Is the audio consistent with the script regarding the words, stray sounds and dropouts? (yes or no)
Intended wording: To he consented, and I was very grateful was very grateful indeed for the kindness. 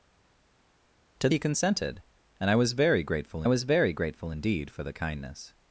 yes